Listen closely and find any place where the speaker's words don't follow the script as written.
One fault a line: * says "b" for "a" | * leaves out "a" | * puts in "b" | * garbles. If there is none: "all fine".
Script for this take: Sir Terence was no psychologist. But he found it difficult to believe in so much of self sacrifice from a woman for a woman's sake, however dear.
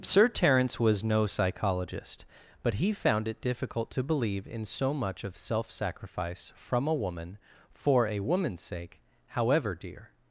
all fine